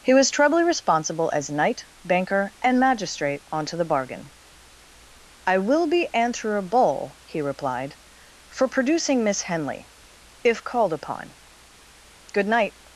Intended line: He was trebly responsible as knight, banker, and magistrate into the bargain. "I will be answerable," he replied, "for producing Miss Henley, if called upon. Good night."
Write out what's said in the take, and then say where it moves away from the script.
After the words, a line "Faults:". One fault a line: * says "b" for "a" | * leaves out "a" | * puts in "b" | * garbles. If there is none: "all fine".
He was trebly responsible as knight, banker, and magistrate onto the bargain. "I will be answerable," he replied, "for producing Miss Henley, if called upon. Good night."
Faults:
* says "onto" for "into"